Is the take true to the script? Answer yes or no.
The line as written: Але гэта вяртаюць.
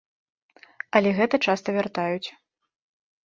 no